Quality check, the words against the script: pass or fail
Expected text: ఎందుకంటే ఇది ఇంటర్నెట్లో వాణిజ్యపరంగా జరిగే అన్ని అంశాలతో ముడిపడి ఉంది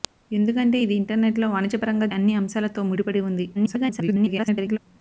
fail